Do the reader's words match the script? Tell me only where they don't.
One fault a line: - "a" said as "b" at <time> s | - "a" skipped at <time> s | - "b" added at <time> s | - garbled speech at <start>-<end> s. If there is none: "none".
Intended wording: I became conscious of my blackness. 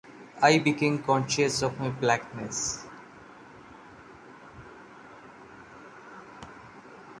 none